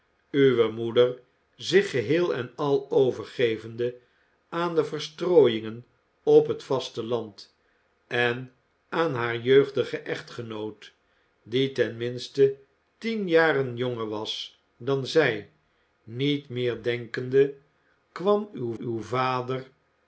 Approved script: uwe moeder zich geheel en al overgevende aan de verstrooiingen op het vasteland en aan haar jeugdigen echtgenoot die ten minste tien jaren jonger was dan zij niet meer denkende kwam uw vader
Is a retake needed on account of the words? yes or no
yes